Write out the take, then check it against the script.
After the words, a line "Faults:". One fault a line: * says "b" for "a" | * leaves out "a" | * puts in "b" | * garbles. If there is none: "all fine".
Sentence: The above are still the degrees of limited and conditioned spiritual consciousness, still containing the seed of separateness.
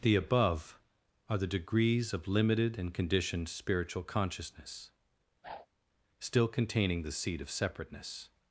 The above are the degrees of limited and conditioned spiritual consciousness, still containing the seed of separateness.
Faults:
* leaves out "still"